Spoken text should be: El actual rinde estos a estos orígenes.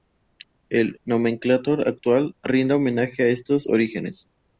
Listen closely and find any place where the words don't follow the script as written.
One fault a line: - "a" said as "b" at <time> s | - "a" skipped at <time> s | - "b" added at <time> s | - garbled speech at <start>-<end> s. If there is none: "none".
- "nomenclátor" added at 1.1 s
- "estos" said as "homenaje" at 2.7 s